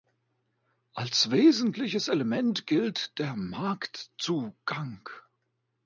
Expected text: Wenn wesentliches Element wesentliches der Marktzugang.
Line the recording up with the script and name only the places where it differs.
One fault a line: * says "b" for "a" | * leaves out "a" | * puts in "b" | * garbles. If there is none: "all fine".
* says "Als" for "Wenn"
* says "gilt" for "wesentliches"